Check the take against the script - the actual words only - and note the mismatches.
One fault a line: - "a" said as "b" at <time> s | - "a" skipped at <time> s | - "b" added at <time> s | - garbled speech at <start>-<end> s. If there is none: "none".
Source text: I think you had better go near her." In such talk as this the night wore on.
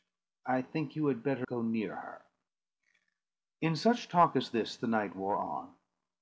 none